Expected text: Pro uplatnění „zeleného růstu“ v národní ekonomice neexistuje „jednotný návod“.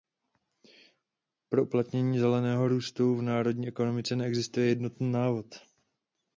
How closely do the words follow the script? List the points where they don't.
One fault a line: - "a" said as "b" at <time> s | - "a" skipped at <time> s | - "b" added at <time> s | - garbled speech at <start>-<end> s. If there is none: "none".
none